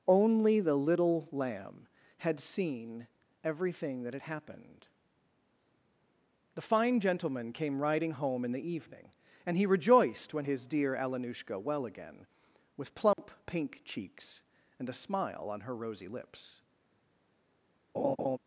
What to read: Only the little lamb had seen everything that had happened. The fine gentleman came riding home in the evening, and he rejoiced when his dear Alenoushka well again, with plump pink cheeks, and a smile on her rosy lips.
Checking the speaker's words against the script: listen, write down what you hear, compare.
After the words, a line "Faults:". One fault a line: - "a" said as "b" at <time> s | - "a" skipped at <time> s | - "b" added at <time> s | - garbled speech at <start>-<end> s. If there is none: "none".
Only the little lamb had seen everything that had happened. The fine gentleman came riding home in the evening, and he rejoiced when his dear Alenoushka well again, with plump pink cheeks, and a smile on her rosy lips.
Faults:
none